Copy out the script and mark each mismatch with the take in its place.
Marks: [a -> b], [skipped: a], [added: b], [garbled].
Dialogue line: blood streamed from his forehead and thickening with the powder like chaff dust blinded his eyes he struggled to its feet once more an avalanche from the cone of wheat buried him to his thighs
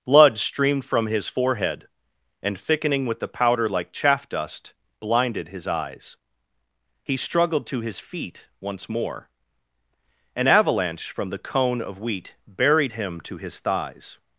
blood streamed from his forehead and thickening with the powder like chaff dust blinded his eyes he struggled to [its -> his] feet once more an avalanche from the cone of wheat buried him to his thighs